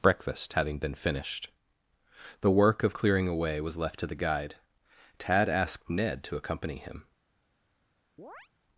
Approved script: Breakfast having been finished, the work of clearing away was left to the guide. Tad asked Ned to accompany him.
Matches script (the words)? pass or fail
pass